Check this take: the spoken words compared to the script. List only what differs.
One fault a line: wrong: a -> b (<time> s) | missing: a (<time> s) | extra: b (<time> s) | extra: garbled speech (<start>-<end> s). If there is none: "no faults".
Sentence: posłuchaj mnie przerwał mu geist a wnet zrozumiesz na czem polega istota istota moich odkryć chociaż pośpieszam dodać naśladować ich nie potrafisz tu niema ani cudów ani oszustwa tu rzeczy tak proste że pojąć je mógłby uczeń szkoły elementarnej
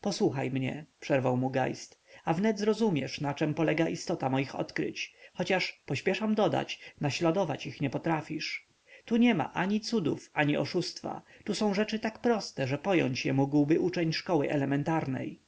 missing: istota (4.3 s)
extra: są (11.6 s)